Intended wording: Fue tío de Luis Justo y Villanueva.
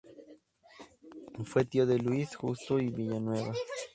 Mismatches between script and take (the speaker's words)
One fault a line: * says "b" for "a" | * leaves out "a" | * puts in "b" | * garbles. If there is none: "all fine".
all fine